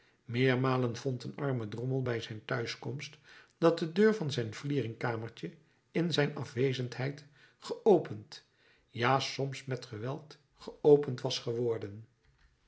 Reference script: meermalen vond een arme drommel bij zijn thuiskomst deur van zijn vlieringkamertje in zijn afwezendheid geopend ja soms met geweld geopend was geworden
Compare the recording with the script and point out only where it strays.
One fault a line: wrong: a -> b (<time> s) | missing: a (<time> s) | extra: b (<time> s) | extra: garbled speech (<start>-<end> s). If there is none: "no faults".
extra: dat de (3.6 s)